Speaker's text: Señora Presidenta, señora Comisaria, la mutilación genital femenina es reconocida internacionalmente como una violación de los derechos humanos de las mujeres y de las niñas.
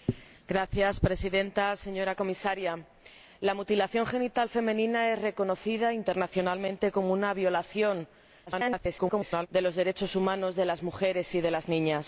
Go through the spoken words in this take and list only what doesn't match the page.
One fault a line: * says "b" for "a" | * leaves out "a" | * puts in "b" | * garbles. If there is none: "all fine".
* garbles